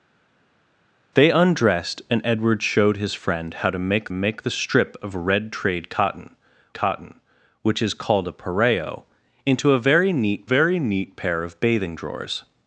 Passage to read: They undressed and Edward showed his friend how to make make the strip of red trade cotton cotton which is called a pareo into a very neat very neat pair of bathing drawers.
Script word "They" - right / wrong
right